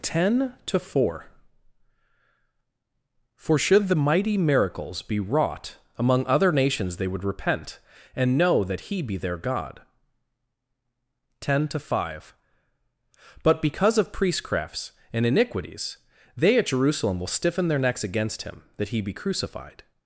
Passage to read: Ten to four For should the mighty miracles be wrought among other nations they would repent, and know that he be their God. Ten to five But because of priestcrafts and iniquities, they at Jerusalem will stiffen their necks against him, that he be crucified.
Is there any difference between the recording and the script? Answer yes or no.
no